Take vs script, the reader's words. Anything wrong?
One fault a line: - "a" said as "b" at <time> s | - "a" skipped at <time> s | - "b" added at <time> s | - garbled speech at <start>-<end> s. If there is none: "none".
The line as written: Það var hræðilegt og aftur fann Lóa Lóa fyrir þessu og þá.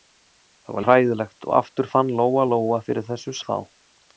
none